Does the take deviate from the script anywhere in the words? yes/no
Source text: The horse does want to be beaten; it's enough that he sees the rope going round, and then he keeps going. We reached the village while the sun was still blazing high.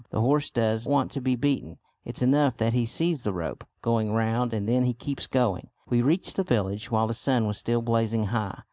no